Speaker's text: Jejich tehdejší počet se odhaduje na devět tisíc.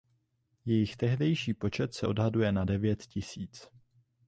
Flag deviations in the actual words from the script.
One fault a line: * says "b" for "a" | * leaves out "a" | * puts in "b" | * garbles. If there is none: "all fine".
all fine